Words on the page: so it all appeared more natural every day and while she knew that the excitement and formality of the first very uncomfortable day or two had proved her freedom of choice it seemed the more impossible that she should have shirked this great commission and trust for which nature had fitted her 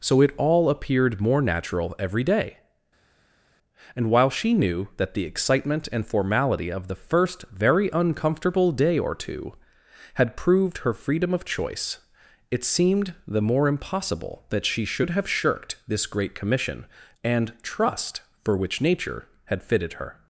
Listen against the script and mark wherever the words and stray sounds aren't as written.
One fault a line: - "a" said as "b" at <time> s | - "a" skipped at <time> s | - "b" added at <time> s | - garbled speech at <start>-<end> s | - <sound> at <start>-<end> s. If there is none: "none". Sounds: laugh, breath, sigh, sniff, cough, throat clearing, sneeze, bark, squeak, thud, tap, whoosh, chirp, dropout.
none